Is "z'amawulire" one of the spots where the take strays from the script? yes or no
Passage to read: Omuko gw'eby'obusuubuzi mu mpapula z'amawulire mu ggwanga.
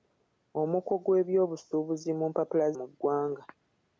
yes